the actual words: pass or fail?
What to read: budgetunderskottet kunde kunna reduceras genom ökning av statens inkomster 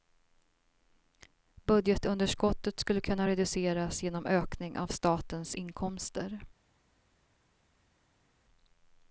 fail